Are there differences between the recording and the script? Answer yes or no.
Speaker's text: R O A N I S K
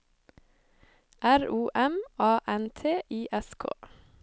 yes